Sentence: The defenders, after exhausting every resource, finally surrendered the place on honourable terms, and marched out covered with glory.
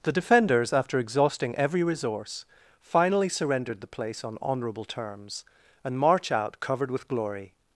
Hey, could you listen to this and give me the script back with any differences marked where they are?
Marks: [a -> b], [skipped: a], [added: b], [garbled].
The defenders, after exhausting every resource, finally surrendered the place on honourable terms, and [marched -> march] out covered with glory.